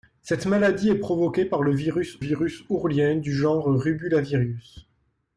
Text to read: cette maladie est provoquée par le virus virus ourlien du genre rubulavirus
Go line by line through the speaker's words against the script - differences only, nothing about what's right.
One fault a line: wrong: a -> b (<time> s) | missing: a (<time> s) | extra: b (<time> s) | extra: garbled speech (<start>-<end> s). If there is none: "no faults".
no faults